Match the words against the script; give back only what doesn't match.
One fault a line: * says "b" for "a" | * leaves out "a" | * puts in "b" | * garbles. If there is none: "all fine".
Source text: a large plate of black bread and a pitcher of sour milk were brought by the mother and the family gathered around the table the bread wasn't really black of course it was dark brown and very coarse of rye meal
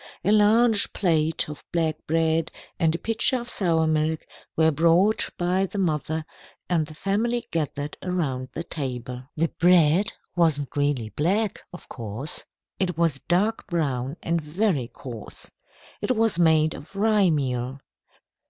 * puts in "it was made"